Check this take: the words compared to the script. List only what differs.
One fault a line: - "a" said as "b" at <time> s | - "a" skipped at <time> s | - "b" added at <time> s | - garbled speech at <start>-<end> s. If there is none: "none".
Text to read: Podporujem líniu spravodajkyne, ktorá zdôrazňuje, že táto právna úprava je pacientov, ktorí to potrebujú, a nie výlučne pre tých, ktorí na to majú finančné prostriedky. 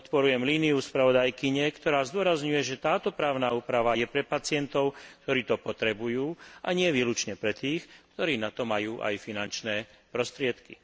- "pre" added at 4.1 s
- "aj" added at 9.0 s